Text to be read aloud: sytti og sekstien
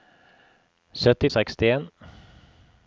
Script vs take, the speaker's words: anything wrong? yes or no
no